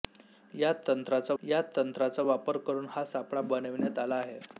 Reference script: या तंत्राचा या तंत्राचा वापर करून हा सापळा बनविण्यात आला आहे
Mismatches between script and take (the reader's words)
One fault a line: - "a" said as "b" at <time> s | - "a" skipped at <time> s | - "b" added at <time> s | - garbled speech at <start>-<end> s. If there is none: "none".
none